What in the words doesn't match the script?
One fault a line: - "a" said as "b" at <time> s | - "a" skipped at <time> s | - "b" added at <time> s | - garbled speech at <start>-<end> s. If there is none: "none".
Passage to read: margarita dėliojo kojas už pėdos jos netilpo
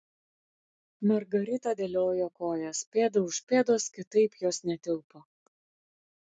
- "pėda" added at 3.0 s
- "kitaip" added at 4.0 s